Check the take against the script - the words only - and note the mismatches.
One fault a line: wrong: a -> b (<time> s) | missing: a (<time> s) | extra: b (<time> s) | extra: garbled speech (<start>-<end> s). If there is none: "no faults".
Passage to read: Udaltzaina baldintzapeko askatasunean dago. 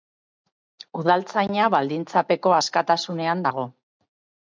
no faults